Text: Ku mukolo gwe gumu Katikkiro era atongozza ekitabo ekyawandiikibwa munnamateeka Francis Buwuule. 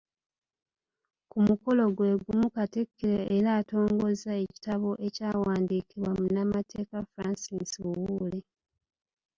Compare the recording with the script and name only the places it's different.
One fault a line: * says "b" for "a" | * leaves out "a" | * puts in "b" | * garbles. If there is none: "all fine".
all fine